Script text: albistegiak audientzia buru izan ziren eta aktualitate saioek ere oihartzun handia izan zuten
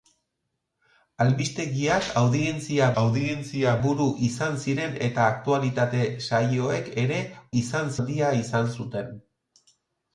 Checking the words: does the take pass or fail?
fail